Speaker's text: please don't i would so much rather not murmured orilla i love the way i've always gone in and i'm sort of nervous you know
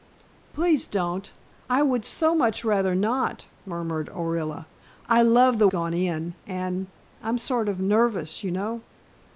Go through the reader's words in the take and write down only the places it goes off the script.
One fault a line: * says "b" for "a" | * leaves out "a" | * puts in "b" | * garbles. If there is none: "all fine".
* leaves out "way i've always"